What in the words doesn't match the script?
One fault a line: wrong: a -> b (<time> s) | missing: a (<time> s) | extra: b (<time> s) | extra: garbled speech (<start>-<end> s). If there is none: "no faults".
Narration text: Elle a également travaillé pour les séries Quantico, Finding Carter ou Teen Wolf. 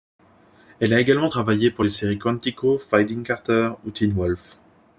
no faults